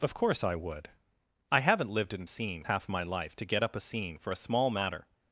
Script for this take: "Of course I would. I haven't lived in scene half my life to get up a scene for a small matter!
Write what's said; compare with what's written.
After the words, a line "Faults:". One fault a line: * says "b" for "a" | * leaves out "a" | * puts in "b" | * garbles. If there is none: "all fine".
"Of course I would. I haven't lived in scene half my life to get up a scene for a small matter!
Faults:
all fine